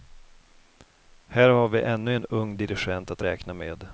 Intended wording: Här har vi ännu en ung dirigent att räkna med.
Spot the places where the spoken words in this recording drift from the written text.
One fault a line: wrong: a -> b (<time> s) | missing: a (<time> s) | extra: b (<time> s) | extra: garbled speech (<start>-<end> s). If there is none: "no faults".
no faults